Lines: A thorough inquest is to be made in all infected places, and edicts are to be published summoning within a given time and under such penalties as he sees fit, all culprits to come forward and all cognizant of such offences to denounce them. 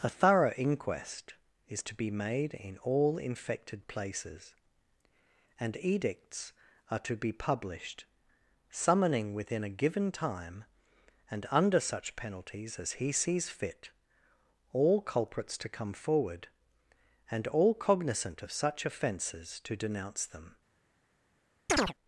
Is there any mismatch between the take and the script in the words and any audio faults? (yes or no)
yes